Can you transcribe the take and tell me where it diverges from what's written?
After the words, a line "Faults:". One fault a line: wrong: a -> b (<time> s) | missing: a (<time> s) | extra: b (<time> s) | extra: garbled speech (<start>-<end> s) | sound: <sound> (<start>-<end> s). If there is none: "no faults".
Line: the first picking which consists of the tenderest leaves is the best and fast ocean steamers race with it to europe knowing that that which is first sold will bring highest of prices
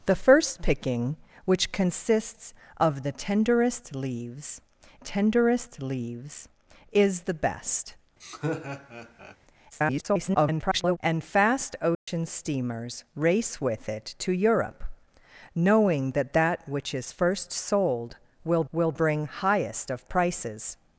the first picking which consists of the tenderest leaves tenderest leaves is the best [garbled] and fast ocean steamers race with it to europe knowing that that which is first sold will will bring highest of prices
Faults:
extra: tenderest leaves (5.0 s)
sound: laugh (8.2-9.4 s)
extra: garbled speech (9.7-11.0 s)
sound: dropout (11.9-12.1 s)
extra: will (18.7 s)